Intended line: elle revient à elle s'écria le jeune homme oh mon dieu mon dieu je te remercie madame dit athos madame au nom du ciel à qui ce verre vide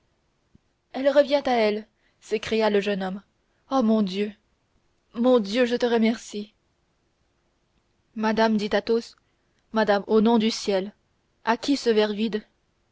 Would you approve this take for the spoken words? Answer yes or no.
yes